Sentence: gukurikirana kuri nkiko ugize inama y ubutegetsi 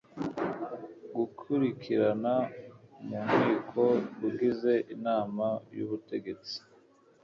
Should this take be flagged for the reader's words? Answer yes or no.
yes